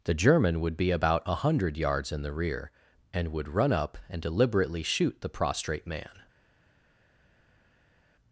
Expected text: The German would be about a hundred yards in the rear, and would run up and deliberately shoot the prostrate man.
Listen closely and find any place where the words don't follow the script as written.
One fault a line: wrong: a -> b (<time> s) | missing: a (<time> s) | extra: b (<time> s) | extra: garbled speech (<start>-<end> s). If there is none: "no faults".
no faults